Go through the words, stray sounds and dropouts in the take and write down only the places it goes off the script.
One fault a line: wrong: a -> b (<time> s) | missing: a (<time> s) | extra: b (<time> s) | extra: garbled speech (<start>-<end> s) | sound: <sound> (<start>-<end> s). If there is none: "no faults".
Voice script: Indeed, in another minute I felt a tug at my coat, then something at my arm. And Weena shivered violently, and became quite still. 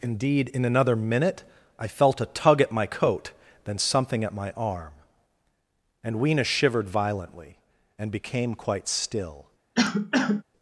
sound: cough (9.8-10.4 s)